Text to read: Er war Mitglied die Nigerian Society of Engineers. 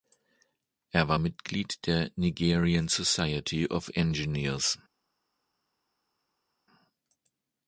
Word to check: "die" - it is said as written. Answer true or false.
false